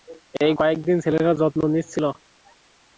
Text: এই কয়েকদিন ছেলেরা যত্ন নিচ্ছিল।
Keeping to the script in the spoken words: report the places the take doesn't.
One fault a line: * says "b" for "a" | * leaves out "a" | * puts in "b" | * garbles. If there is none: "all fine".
all fine